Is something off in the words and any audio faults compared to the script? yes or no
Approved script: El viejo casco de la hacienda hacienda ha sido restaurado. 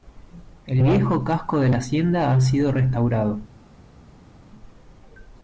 yes